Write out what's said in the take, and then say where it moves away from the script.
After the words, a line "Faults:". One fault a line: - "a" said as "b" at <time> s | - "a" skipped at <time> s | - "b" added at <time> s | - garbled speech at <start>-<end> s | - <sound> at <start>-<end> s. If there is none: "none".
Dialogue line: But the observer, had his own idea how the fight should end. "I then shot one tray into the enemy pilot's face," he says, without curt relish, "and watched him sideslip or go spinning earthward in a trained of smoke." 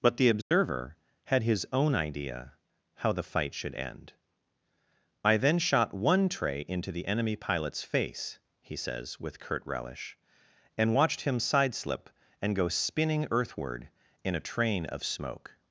But the observer, had his own idea how the fight should end. "I then shot one tray into the enemy pilot's face," he says, with curt relish, "and watched him sideslip and go spinning earthward in a train of smoke."
Faults:
- dropout at 0.4-0.5 s
- "without" said as "with" at 9.2 s
- "or" said as "and" at 12.4 s
- "trained" said as "train" at 14.5 s